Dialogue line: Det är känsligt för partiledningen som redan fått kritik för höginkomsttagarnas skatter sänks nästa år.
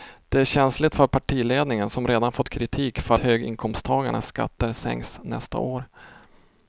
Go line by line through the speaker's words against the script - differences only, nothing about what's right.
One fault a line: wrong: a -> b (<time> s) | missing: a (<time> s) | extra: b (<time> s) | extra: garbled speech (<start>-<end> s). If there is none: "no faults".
no faults